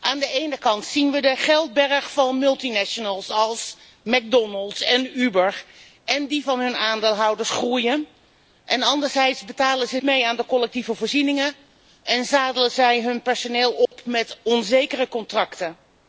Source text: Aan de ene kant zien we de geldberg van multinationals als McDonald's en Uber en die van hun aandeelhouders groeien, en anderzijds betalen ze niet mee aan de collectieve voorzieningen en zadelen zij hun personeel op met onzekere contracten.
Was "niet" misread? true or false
true